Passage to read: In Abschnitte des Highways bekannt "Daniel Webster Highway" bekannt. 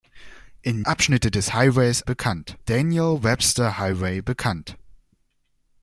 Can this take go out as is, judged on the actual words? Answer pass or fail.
pass